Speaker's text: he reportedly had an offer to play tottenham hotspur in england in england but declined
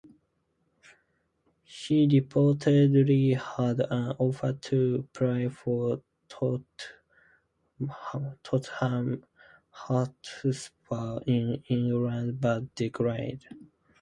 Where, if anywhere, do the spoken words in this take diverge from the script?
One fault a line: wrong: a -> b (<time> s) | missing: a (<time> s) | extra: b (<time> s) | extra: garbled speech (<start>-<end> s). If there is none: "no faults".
extra: for (5.5 s)
missing: in england (12.4 s)